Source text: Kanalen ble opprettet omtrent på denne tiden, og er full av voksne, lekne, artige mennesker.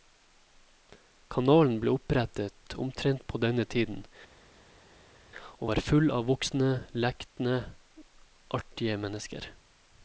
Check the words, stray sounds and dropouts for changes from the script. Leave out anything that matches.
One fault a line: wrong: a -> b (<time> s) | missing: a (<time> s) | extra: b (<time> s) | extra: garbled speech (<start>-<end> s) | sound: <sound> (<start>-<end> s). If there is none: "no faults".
wrong: er -> var (5.7 s)